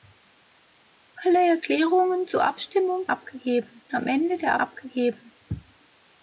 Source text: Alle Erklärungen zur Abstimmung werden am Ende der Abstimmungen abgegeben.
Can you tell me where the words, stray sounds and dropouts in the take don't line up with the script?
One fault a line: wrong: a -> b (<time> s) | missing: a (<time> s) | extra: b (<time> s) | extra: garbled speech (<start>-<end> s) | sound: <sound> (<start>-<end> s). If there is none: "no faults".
wrong: werden -> abgegeben (3.1 s)
missing: Abstimmungen (4.6 s)